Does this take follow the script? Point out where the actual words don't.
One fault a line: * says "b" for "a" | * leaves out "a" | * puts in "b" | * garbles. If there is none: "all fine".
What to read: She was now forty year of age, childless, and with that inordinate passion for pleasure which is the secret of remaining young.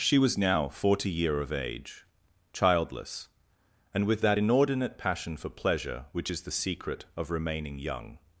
all fine